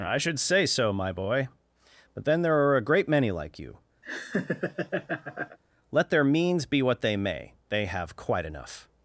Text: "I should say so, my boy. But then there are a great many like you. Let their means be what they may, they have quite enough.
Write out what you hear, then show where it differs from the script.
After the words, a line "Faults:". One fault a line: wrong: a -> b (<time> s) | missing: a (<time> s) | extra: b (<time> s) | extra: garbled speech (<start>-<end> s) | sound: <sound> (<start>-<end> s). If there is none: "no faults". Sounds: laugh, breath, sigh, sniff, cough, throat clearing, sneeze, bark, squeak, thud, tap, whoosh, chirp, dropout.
"I should say so, my boy. But then there are a great many like you. Let their means be what they may, they have quite enough.
Faults:
sound: laugh (4.0-5.6 s)